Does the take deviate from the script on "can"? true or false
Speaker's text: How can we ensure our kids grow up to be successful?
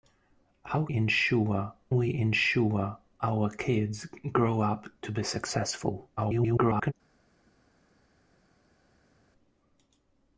true